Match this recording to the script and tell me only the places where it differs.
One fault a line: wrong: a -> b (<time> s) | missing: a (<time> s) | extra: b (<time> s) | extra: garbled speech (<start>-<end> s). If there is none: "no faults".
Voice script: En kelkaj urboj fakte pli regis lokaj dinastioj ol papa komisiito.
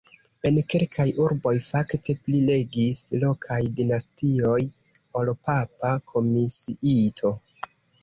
no faults